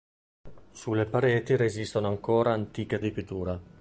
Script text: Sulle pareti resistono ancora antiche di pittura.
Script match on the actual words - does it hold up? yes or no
yes